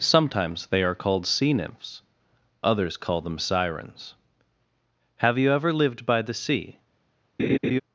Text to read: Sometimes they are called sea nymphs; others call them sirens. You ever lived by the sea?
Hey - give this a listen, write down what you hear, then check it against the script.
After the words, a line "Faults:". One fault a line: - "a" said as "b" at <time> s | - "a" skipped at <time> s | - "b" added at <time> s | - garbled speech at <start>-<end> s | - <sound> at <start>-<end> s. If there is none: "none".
Sometimes they are called sea nymphs; others call them sirens. Have you ever lived by the sea?
Faults:
- "Have" added at 5.2 s
- laugh at 7.4-7.8 s